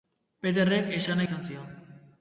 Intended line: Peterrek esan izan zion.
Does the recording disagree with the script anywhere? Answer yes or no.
no